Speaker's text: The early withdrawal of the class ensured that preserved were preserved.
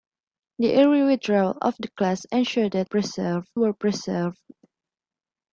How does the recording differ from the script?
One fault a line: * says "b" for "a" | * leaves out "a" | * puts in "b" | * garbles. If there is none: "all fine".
all fine